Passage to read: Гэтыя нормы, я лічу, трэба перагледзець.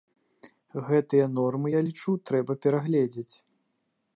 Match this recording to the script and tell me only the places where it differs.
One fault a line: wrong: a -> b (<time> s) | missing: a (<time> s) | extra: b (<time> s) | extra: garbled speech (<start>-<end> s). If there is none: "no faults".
no faults